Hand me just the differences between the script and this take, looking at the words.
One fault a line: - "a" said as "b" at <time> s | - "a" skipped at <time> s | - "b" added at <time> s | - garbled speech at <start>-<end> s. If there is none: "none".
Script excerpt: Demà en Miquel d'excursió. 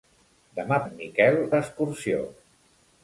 none